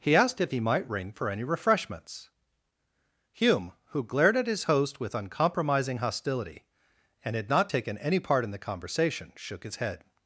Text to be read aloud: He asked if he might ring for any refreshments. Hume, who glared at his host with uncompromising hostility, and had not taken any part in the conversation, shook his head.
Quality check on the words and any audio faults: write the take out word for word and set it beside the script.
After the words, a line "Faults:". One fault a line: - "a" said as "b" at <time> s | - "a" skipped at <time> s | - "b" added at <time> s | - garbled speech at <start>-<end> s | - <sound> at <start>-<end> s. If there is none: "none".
He asked if he might ring for any refreshments. Hume, who glared at his host with uncompromising hostility, and had not taken any part in the conversation, shook his head.
Faults:
none